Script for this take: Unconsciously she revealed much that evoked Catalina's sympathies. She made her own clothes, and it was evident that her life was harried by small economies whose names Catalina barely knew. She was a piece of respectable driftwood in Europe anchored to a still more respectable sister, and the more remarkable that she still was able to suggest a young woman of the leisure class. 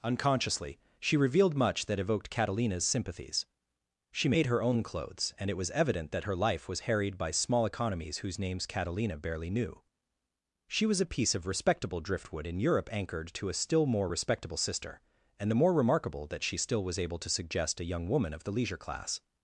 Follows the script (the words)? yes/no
yes